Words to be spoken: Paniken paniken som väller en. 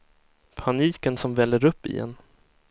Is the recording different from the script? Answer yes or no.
yes